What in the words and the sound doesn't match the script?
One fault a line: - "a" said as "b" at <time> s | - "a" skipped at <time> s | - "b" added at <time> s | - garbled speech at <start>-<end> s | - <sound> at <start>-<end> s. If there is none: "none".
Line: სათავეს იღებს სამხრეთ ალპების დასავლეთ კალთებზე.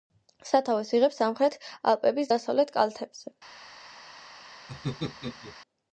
- laugh at 4.7-5.6 s